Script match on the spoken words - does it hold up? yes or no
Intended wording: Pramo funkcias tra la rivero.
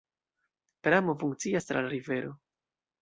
yes